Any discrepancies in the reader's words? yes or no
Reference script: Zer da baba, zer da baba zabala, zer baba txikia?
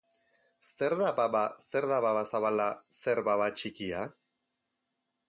no